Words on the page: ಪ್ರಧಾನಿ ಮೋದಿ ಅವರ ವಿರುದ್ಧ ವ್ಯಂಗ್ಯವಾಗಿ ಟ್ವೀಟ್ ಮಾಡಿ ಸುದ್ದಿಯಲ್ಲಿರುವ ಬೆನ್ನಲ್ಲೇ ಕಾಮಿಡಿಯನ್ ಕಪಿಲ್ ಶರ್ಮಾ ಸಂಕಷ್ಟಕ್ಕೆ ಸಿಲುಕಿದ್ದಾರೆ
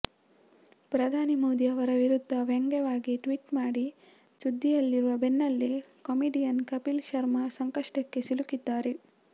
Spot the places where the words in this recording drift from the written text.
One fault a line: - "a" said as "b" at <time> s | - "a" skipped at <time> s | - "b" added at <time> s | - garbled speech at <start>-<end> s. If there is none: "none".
none